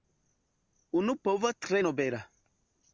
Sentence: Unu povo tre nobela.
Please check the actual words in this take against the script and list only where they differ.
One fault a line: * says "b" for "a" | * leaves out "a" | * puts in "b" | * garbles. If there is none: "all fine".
all fine